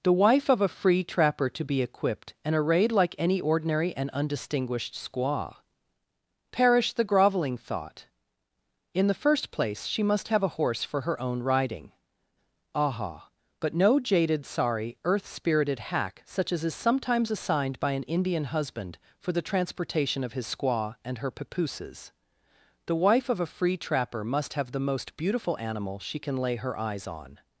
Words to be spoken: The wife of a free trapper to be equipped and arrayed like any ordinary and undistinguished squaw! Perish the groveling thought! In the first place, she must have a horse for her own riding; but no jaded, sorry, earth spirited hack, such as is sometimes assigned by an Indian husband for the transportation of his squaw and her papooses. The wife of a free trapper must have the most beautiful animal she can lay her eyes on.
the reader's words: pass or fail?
fail